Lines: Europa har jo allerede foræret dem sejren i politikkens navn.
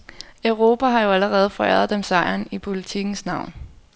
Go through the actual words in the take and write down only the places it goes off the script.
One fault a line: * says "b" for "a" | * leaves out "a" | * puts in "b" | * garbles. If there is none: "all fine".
all fine